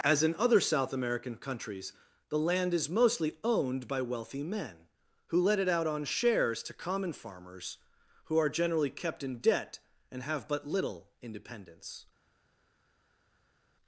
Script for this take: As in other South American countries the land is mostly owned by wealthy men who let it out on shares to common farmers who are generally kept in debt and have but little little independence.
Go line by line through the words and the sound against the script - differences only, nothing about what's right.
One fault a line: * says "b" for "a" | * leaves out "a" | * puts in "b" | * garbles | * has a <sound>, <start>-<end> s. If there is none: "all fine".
* leaves out "little"